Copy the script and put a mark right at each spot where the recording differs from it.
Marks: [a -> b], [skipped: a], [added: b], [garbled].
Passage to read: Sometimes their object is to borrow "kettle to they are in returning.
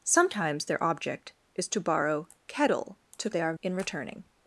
Sometimes their object is to borrow "kettle to they are in returning.